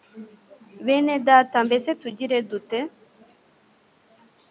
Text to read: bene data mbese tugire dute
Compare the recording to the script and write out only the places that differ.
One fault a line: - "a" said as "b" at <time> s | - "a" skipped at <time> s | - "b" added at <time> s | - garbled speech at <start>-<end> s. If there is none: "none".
none